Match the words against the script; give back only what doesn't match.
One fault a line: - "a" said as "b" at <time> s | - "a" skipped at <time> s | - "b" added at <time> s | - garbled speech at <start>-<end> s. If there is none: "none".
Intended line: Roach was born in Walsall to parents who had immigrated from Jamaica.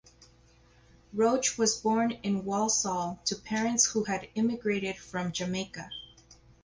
none